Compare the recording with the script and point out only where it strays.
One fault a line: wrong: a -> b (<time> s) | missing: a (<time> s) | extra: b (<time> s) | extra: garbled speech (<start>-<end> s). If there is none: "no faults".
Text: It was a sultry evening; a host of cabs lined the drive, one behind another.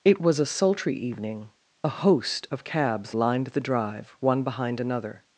no faults